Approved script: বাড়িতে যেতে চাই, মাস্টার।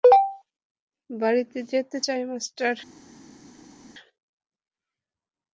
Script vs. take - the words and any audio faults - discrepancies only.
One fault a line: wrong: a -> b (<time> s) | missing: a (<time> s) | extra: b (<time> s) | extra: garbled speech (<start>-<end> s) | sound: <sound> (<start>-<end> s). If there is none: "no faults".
no faults